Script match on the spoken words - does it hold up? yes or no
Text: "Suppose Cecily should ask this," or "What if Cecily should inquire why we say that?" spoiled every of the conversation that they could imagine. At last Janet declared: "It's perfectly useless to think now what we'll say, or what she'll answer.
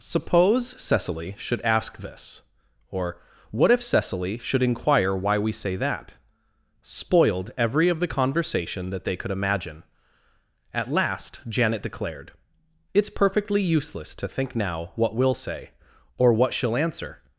yes